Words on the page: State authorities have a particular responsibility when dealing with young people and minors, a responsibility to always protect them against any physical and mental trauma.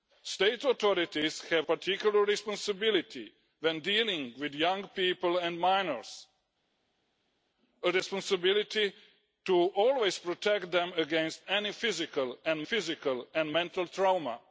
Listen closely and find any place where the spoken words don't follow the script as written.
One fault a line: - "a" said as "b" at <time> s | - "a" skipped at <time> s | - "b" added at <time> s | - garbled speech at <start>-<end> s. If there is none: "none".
- "a" skipped at 1.7 s
- "physical and" added at 12.6 s